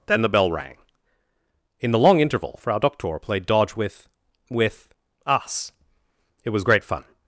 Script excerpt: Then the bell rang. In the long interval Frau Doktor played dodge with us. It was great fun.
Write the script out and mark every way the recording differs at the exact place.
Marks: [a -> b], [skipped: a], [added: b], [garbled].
Then the bell rang. In the long interval Frau Doktor played dodge with [added: with] us. It was great fun.